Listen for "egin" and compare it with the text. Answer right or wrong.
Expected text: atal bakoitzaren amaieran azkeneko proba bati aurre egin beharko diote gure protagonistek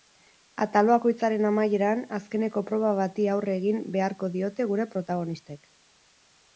right